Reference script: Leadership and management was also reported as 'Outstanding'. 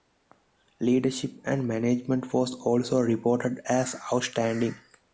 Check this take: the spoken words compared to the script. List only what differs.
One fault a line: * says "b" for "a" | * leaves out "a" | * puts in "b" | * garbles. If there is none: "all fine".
all fine